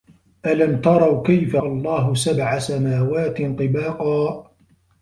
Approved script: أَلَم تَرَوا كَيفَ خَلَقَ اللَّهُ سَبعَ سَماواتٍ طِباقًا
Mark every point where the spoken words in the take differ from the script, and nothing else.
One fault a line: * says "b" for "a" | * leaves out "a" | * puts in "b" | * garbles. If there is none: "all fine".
* leaves out "خَلَقَ"